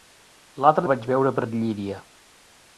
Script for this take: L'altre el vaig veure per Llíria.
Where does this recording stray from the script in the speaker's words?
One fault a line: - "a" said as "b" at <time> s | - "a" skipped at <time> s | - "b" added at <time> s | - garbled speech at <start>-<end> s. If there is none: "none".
none